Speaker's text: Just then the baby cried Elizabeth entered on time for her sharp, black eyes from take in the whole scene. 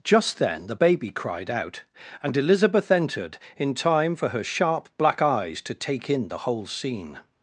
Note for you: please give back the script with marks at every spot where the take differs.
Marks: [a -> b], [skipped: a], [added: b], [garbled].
Just then the baby cried [added: out and] Elizabeth entered [on -> in] time for her sharp, black eyes [from -> to] take in the whole scene.